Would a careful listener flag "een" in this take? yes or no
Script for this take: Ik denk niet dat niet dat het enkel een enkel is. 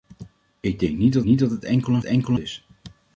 no